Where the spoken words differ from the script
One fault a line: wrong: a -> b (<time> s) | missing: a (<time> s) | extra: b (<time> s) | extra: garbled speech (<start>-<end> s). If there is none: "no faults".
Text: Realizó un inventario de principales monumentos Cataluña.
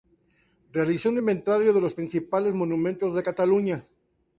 extra: los (1.8 s)
extra: de (3.1 s)